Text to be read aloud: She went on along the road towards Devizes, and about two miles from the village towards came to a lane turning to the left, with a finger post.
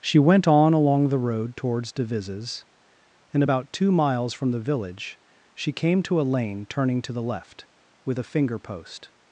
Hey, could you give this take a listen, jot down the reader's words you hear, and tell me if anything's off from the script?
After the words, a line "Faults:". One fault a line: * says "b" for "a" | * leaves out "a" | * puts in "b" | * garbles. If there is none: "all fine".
She went on along the road towards Devizes, and about two miles from the village she came to a lane turning to the left, with a finger post.
Faults:
* says "she" for "towards"